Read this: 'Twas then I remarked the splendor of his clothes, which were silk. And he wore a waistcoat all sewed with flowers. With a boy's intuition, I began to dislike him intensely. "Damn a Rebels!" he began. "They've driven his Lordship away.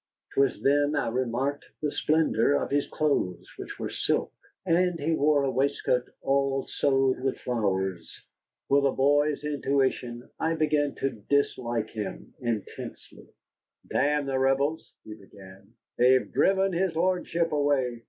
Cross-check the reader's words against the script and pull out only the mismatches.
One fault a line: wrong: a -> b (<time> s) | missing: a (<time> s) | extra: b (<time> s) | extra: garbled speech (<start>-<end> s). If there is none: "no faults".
wrong: a -> the (14.2 s)